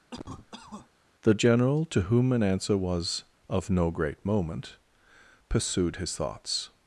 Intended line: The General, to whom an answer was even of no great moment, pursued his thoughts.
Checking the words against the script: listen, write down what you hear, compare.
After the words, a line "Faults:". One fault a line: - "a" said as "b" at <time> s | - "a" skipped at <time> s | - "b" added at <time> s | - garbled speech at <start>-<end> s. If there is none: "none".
The General, to whom an answer was of no great moment, pursued his thoughts.
Faults:
- "even" skipped at 3.2 s